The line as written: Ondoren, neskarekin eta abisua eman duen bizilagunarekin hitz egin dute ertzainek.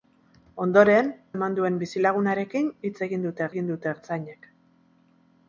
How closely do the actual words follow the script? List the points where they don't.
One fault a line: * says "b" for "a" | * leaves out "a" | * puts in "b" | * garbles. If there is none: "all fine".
* leaves out "neskarekin eta abisua"
* puts in "egin dute"